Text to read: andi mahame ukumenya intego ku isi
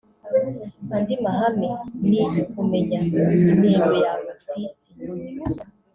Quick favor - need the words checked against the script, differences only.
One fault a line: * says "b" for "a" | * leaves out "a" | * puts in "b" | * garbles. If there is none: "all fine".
* puts in "ni"
* puts in "yawe"